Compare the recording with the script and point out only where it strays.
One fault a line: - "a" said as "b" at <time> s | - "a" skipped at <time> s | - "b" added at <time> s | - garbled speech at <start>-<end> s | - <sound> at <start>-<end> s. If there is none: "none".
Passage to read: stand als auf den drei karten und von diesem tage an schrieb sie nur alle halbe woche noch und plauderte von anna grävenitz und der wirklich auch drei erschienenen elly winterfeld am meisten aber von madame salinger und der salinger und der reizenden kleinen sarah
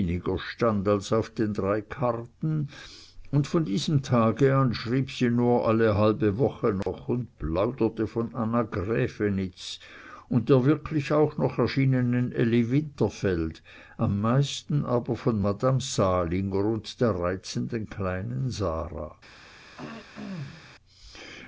- dropout at 6.8-6.9 s
- "drei" said as "noch" at 11.4 s
- "salinger und der" skipped at 17.2 s
- throat clearing at 19.8-20.8 s